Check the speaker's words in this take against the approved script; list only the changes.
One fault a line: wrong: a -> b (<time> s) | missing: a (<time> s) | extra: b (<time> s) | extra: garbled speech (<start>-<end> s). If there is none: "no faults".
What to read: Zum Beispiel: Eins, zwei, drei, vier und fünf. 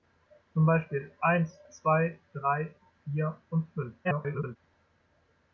extra: garbled speech (4.0-4.6 s)